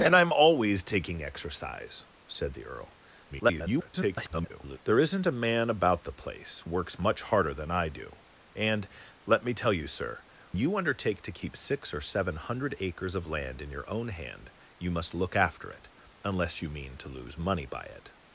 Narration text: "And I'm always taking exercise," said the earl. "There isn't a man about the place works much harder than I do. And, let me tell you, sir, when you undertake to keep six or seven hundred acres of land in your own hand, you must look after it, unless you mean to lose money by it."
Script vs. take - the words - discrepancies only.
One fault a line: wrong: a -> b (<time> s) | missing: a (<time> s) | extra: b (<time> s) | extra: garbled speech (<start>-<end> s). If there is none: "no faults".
extra: garbled speech (3.3-4.8 s)
missing: when (10.2 s)